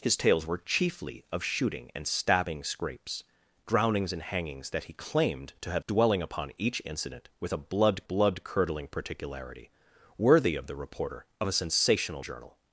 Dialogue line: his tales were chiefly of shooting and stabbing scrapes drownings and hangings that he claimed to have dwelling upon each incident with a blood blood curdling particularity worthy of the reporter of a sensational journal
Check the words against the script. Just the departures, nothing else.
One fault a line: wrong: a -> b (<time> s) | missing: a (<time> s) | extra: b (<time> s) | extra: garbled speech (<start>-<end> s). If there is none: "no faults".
no faults